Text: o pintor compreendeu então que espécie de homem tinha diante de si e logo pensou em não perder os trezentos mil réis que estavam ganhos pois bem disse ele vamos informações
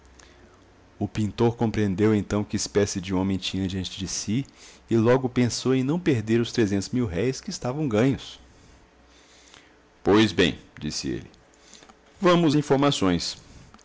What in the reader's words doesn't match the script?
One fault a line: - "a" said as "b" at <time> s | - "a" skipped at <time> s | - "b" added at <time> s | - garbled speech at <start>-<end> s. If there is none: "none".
none